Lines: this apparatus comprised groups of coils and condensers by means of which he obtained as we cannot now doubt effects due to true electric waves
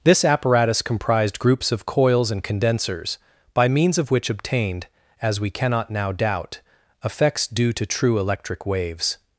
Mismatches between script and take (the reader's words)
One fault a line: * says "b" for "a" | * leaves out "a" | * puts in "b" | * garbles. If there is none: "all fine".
* leaves out "he"